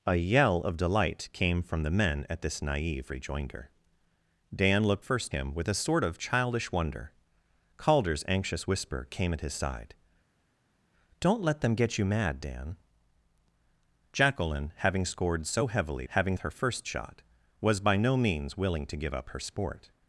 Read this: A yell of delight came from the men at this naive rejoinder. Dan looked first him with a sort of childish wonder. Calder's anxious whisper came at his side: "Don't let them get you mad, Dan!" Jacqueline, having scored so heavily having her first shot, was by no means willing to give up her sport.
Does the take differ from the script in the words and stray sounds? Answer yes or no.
no